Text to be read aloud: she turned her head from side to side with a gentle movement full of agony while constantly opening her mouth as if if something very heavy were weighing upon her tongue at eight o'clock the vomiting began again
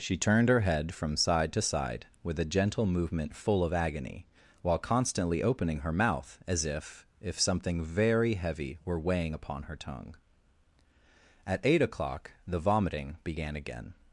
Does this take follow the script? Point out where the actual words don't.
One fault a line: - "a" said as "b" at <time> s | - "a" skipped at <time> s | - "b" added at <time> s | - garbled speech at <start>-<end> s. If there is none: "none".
none